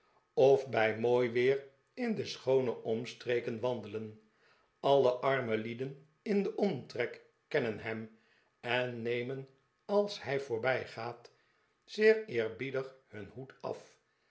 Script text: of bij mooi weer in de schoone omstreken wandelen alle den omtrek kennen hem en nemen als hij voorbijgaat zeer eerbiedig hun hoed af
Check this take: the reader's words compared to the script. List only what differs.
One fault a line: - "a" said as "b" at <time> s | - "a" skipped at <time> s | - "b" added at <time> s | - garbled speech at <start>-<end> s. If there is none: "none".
- "arme lieden in" added at 5.1 s